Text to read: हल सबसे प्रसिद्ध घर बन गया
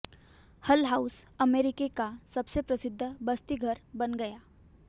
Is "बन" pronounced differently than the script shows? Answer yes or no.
no